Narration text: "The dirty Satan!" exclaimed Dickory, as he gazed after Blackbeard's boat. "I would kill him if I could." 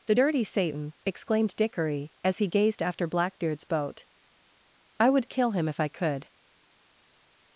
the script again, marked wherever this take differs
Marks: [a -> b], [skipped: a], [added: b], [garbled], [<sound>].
"The dirty Satan!" exclaimed Dickory, as he gazed after Blackbeard's boat. "I would kill him if I could."